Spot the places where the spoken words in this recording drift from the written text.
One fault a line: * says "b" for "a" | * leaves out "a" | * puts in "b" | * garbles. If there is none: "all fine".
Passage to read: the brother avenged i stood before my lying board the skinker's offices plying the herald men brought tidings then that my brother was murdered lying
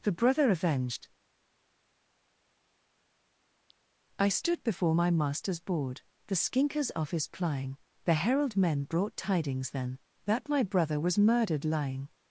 * says "master's" for "lying"
* says "office" for "offices"